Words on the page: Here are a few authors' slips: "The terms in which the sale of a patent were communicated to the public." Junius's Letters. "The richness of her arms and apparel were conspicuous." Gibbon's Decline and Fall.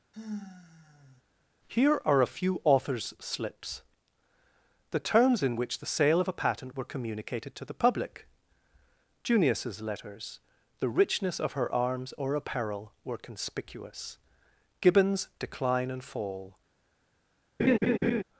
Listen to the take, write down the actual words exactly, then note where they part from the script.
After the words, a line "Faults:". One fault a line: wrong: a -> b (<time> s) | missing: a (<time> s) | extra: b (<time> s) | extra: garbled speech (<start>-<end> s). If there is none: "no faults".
Here are a few authors' slips: "The terms in which the sale of a patent were communicated to the public." Junius's Letters. "The richness of her arms or apparel were conspicuous." Gibbon's Decline and Fall.
Faults:
wrong: and -> or (12.2 s)